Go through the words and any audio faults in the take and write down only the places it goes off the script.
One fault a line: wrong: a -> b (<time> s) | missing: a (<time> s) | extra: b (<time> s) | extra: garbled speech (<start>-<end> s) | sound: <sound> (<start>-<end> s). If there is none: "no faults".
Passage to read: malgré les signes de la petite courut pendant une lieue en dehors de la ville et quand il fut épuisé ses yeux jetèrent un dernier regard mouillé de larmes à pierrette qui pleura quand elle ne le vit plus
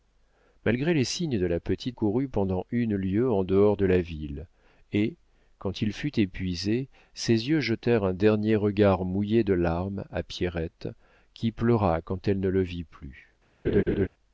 sound: laugh (13.6-14.1 s)